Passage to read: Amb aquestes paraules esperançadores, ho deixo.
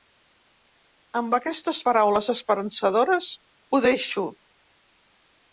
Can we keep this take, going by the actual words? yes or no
yes